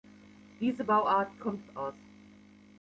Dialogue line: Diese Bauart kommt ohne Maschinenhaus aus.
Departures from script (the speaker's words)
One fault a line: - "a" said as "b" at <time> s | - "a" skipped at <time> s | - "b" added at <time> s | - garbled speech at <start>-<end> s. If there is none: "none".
- "ohne Maschinenhaus" skipped at 1.7 s